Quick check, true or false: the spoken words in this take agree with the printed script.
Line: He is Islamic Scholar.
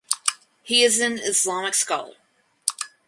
false